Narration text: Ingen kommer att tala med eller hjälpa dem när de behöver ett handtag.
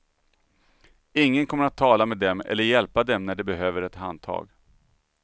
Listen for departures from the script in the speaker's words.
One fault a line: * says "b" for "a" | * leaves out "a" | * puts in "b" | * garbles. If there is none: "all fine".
* puts in "dem"